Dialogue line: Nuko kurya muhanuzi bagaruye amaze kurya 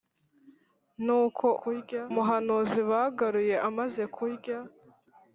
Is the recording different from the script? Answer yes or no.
no